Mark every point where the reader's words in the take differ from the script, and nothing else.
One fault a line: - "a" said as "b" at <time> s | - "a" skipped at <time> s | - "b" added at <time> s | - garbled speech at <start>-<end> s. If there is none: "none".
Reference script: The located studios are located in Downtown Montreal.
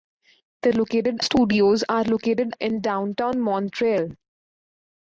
none